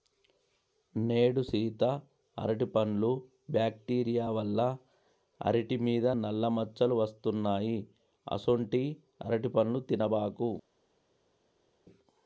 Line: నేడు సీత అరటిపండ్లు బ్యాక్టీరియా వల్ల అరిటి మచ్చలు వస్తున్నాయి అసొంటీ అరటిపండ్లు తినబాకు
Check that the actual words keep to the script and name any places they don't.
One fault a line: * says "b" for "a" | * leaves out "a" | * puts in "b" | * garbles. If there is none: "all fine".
* puts in "మీద నల్ల"